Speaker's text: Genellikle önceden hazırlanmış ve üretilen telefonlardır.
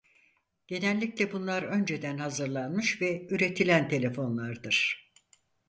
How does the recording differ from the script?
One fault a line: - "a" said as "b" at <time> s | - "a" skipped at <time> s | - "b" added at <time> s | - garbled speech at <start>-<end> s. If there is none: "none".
- "bunlar" added at 1.3 s